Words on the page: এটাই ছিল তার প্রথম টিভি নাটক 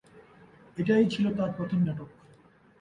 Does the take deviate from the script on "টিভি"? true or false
true